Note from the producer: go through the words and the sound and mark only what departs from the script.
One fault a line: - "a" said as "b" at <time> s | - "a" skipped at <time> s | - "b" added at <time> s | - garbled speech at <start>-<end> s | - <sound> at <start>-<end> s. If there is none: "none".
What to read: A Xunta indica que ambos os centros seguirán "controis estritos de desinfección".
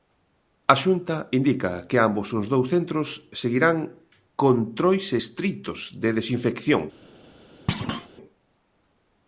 - "dous" added at 2.5 s
- thud at 7.7-8.1 s